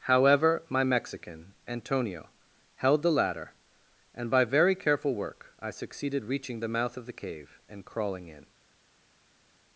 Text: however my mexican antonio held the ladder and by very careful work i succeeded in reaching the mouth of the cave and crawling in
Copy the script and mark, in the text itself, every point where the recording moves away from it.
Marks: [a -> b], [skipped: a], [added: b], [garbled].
however my mexican antonio held the ladder and by very careful work i succeeded [skipped: in] reaching the mouth of the cave and crawling in